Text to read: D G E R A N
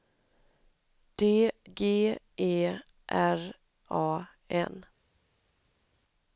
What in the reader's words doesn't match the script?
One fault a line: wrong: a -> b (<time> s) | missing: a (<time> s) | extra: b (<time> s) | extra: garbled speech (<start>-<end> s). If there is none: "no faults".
no faults